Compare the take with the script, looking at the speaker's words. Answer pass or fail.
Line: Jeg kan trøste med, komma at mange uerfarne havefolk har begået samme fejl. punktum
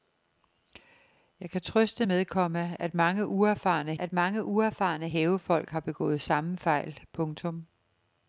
fail